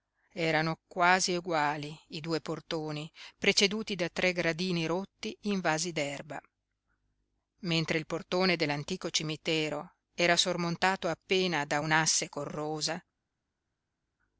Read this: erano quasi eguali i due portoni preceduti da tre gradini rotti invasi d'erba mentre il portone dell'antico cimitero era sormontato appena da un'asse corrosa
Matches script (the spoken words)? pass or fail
pass